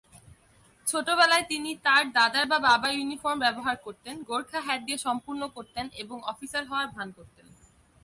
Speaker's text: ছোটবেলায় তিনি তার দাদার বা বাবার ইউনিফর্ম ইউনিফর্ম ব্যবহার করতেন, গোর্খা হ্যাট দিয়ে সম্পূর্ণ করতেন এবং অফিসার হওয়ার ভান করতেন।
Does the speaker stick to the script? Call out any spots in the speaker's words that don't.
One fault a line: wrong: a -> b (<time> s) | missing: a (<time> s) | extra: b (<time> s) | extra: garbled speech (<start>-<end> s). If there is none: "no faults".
missing: ইউনিফর্ম (3.4 s)